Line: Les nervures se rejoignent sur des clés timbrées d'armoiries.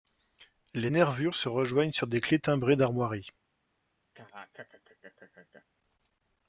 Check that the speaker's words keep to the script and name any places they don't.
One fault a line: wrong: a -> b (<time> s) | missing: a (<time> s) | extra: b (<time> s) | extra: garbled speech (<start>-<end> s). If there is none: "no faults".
no faults